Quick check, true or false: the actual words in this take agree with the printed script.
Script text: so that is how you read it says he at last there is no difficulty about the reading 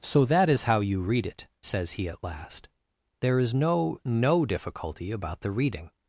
false